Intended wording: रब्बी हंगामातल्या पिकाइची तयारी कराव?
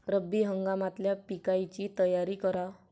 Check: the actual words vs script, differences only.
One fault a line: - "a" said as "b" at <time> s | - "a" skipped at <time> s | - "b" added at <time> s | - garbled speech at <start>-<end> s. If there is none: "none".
none